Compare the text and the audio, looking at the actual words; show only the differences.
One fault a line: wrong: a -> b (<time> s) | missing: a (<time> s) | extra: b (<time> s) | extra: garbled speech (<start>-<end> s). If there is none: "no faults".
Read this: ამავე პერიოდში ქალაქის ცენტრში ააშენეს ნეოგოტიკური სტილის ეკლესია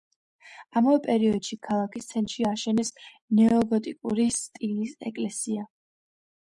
no faults